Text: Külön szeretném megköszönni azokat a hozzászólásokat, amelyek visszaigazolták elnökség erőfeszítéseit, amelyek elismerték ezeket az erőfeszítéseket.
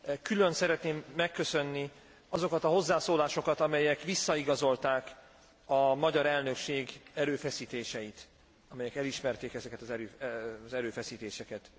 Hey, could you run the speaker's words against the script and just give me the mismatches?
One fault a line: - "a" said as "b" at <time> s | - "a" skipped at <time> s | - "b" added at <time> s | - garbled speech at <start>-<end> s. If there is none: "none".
- "a magyar" added at 5.7 s